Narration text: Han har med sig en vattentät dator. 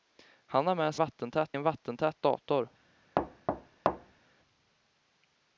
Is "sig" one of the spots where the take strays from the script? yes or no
yes